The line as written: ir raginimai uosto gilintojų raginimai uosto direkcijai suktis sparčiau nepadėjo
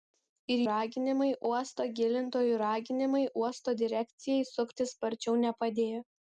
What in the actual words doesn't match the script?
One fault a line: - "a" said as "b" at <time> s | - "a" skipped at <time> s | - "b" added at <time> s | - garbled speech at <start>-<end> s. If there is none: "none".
none